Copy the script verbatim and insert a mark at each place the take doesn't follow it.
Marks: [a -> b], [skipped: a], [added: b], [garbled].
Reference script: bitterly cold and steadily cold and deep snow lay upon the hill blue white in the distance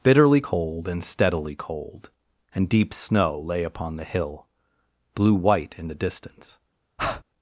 bitterly cold and steadily cold and deep snow lay upon the hill blue white in the distance